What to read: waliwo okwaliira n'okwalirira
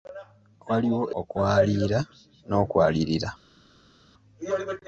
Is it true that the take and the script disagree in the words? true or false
false